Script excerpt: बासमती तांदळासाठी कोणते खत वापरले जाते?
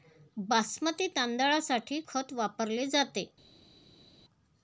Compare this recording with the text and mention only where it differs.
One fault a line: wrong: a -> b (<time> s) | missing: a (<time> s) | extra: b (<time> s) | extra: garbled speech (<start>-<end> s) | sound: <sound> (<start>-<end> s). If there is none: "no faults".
missing: कोणते (2.0 s)